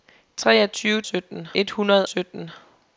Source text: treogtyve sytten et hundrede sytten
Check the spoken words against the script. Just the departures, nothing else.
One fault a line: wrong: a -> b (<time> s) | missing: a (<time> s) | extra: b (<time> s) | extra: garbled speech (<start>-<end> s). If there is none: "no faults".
no faults